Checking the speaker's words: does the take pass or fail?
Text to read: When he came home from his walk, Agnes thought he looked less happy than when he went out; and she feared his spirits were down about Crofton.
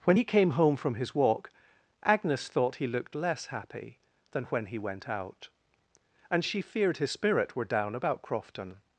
fail